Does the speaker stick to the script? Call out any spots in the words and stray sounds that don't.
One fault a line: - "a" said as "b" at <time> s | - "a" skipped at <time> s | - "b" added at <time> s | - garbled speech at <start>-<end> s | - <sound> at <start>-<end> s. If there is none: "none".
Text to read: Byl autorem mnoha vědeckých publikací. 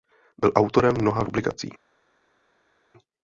- "vědeckých" skipped at 1.2 s